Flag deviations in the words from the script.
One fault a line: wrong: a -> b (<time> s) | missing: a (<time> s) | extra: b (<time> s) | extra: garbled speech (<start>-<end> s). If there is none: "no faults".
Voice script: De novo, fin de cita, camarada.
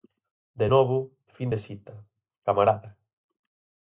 no faults